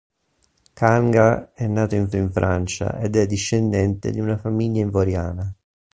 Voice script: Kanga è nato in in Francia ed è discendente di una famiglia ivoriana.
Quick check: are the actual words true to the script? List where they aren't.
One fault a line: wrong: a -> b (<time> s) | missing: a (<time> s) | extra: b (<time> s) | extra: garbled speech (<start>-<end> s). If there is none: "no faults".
no faults